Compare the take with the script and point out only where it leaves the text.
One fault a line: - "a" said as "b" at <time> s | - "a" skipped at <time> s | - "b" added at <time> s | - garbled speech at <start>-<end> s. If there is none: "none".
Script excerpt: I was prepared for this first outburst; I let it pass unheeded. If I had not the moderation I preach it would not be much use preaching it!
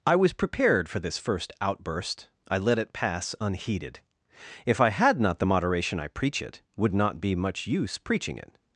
none